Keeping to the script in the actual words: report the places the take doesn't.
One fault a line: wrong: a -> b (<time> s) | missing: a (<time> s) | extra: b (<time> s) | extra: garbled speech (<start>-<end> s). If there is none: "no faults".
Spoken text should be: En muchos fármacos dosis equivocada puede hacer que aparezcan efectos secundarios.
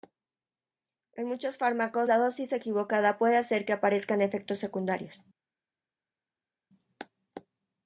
extra: la (2.1 s)